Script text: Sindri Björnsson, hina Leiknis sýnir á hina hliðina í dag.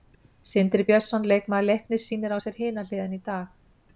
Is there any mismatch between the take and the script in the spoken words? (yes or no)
yes